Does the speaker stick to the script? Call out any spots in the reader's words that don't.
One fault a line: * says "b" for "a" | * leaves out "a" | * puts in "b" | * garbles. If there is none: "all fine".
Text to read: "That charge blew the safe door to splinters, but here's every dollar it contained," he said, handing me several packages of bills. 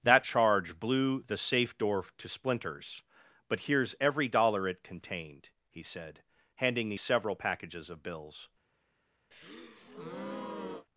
all fine